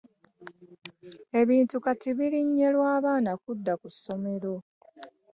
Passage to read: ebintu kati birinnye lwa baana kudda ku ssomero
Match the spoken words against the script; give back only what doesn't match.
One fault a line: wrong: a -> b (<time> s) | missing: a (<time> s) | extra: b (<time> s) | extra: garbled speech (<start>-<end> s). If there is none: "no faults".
no faults